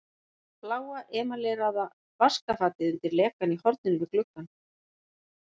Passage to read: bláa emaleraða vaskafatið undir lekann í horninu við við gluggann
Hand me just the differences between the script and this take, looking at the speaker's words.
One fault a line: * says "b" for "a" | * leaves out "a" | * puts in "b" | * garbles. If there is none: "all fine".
* leaves out "við"